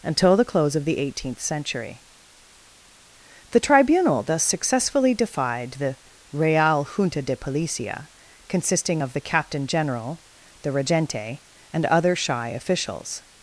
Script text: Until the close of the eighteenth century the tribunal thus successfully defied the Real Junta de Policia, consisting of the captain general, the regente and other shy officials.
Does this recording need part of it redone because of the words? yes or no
no